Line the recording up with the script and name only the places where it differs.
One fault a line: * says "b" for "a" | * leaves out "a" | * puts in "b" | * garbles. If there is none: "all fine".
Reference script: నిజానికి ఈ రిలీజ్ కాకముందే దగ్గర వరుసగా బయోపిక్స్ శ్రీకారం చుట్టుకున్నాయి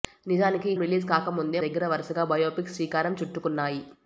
all fine